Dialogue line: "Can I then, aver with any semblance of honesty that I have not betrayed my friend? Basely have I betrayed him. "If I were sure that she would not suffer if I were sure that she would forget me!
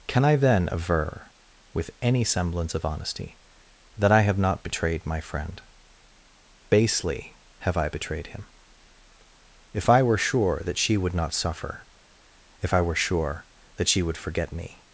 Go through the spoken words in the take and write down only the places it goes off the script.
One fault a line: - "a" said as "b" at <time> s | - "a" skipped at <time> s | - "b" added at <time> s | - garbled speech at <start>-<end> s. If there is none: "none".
none